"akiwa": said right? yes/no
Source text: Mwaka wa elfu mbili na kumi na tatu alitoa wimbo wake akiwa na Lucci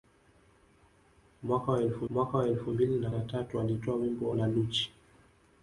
no